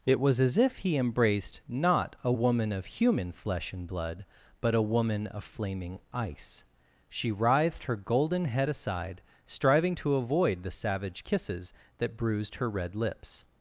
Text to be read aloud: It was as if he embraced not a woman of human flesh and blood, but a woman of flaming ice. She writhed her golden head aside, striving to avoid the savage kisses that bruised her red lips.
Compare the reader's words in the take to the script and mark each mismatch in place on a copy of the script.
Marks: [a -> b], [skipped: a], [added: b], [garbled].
It was as if he embraced not a woman of human flesh and blood, but a woman of flaming ice. She writhed her golden head aside, striving to avoid the savage kisses that bruised her red lips.